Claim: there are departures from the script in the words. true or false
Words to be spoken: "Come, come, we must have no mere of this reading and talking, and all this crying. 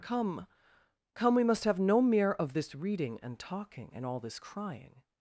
false